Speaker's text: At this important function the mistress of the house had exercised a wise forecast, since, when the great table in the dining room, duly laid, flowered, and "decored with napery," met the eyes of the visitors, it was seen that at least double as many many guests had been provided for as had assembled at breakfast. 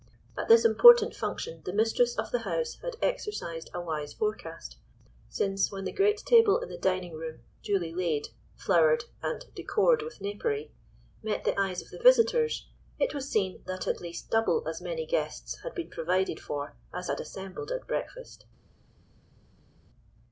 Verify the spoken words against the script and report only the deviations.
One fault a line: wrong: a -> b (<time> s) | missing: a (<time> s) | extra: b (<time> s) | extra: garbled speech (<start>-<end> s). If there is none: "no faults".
missing: many (15.1 s)